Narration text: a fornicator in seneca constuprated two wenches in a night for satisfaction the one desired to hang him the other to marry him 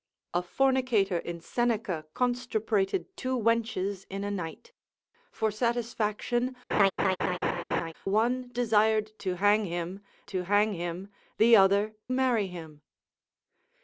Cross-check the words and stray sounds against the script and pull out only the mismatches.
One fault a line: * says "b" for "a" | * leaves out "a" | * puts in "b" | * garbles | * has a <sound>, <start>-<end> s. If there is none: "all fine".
* leaves out "the"
* has a laugh, 6.7-7.9 s
* puts in "to hang him"
* leaves out "to"